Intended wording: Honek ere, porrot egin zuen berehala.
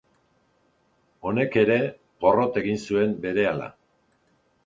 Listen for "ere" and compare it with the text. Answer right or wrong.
right